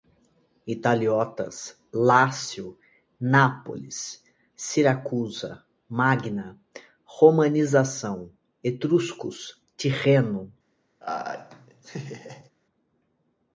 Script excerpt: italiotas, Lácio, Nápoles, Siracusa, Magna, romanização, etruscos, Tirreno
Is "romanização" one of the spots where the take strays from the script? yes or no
no